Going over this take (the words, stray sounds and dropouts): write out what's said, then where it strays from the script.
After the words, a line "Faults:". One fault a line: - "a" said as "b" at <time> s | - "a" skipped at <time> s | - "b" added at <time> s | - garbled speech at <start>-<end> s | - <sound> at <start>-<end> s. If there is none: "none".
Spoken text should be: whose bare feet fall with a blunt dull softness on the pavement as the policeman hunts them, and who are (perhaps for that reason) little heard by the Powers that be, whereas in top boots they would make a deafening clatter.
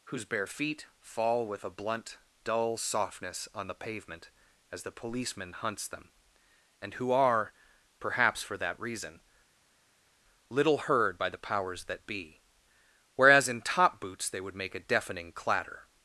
whose bare feet fall with a blunt dull softness on the pavement as the policeman hunts them, and who are (perhaps for that reason) little heard by the Powers that be, whereas in top boots they would make a deafening clatter.
Faults:
none